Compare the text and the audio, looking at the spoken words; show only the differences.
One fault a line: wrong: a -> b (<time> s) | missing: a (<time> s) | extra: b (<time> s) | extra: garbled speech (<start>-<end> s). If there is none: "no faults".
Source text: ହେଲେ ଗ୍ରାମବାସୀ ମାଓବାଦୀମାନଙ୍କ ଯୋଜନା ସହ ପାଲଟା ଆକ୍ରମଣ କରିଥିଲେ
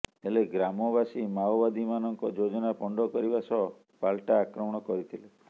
extra: ପଣ୍ଡ କରିବା (2.8 s)